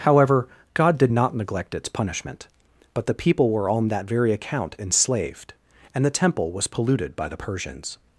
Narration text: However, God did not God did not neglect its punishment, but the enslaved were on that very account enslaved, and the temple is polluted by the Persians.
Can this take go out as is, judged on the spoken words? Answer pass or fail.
fail